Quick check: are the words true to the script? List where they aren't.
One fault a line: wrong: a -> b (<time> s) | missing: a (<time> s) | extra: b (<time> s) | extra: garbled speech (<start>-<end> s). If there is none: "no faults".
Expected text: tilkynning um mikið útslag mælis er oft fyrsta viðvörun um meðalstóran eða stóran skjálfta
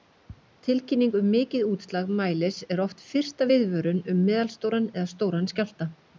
no faults